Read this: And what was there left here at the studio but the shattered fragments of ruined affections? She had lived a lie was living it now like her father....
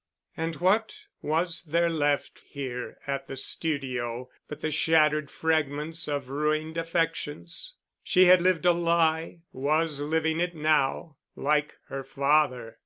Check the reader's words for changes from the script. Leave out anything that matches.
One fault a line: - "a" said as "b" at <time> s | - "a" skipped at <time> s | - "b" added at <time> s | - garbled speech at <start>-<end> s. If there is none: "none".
none